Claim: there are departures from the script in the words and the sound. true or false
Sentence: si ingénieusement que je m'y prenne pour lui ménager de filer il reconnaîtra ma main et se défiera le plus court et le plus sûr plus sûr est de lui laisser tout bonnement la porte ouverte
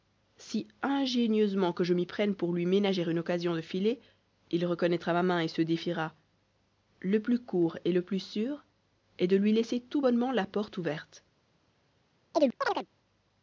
true